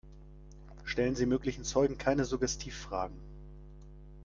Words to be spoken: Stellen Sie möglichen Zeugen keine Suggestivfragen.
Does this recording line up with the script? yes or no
yes